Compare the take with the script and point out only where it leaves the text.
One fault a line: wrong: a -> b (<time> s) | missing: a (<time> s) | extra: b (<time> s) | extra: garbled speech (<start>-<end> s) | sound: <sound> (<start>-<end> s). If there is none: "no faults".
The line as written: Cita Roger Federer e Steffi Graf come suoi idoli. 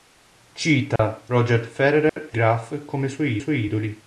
sound: dropout (1.0-1.0 s)
sound: dropout (2.1-2.2 s)
missing: Steffi (2.4 s)
extra: suoi (3.4 s)